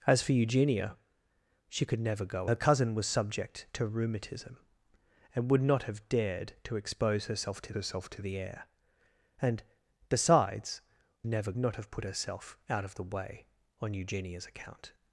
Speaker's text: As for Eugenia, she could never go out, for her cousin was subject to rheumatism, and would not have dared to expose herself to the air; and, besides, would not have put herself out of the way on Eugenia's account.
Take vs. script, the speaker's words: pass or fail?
fail